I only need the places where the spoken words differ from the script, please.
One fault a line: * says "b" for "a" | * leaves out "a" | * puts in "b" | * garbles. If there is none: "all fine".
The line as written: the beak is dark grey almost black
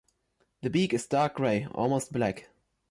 all fine